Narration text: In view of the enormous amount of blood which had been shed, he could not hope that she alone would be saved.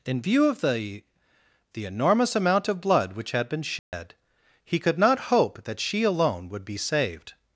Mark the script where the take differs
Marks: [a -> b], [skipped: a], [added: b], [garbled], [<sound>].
In view of the [added: the] enormous amount of blood which had been shed, [dropout] he could not hope that she alone would be saved.